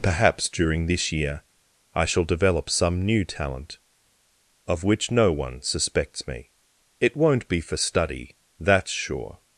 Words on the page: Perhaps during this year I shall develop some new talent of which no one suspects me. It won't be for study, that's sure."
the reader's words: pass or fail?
pass